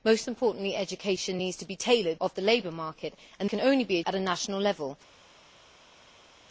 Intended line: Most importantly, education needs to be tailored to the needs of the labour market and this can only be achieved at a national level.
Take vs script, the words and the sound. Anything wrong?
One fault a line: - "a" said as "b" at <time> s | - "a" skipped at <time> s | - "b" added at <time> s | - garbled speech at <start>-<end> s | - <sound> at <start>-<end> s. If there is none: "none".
- "to the needs" skipped at 2.2 s
- "this" skipped at 3.5 s
- "achieved" skipped at 4.0 s